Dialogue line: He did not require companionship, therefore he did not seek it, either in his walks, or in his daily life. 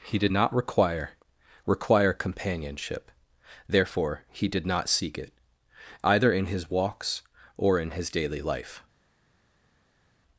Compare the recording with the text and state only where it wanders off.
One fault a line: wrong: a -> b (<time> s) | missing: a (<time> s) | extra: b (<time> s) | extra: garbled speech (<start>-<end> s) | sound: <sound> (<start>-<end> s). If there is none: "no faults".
extra: require (1.6 s)